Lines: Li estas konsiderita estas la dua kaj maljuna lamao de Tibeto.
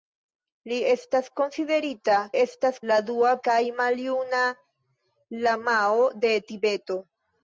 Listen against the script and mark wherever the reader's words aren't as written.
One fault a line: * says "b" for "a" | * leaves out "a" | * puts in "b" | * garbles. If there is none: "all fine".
all fine